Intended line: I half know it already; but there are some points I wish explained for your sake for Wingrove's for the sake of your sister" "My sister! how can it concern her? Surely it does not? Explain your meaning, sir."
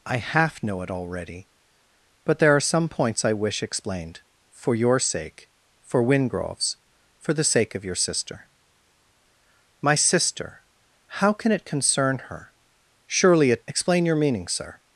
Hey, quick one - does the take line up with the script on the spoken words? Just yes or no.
no